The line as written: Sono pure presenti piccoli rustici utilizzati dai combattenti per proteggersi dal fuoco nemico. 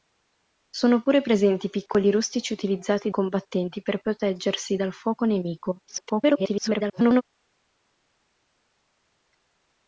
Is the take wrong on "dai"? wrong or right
wrong